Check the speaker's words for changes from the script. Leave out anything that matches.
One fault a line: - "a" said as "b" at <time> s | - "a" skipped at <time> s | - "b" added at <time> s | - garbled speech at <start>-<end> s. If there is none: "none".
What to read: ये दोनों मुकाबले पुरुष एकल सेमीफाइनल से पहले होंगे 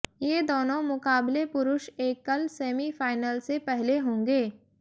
none